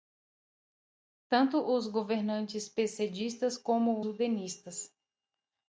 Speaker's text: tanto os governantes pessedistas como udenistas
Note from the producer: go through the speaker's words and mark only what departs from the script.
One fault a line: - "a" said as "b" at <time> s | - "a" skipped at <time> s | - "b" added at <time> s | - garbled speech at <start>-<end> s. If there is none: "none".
none